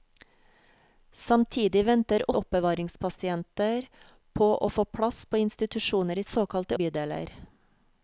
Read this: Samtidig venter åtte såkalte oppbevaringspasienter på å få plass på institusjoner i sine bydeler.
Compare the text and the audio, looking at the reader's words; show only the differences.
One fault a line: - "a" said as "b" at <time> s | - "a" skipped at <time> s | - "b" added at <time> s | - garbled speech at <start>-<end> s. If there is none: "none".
- "åtte såkalte" skipped at 2.3 s
- "sine" said as "såkalte" at 6.2 s